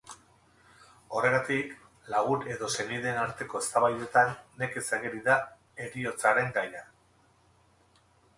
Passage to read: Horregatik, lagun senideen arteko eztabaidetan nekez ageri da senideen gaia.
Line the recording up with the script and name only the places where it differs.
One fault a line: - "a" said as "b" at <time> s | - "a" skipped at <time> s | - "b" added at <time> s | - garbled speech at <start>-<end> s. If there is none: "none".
- "edo" added at 2.5 s
- "senideen" said as "heriotzaren" at 5.8 s